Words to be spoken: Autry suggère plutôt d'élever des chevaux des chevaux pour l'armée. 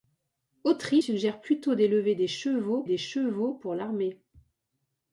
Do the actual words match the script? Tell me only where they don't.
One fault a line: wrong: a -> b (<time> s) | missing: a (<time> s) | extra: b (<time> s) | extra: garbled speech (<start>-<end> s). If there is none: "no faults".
no faults